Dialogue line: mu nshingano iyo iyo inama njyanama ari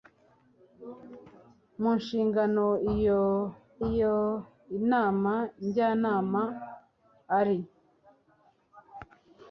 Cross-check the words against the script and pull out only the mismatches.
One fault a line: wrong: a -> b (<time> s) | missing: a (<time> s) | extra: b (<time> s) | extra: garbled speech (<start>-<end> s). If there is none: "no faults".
no faults